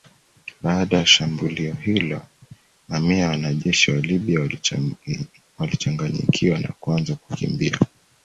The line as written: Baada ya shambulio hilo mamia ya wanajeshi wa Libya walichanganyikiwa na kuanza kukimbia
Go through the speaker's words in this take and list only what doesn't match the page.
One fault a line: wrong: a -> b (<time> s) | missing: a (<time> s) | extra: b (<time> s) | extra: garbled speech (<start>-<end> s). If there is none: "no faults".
no faults